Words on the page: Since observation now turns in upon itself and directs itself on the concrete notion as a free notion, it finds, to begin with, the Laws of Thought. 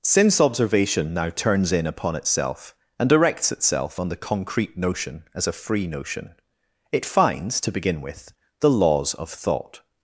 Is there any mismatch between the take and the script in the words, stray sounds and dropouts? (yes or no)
no